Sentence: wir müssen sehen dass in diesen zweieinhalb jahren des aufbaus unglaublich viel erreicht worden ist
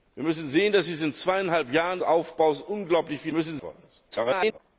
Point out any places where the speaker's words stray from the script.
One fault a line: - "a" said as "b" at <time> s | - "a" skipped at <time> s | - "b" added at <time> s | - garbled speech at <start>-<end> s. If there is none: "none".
- "des" skipped at 2.0 s
- "erreicht" said as "müssen" at 3.3 s
- garbled speech at 4.1-4.6 s